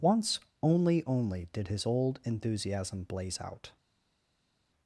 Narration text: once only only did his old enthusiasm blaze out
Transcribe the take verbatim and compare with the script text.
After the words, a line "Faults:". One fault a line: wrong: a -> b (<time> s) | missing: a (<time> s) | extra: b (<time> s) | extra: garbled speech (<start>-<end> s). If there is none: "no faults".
once only only did his old enthusiasm blaze out
Faults:
no faults